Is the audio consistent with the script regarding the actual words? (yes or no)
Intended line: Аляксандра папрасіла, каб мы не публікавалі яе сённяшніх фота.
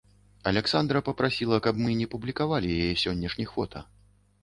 yes